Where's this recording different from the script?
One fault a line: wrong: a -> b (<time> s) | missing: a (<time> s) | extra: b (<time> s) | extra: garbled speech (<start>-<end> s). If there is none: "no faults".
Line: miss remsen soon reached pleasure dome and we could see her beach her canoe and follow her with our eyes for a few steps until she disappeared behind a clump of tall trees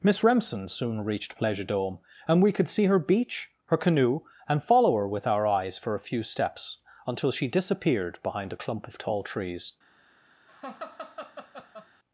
no faults